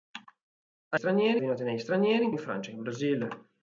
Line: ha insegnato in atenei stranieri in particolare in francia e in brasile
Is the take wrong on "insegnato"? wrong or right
wrong